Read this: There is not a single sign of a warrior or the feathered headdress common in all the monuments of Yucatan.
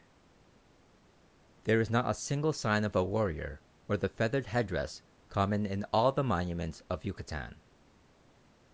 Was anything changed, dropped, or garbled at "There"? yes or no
no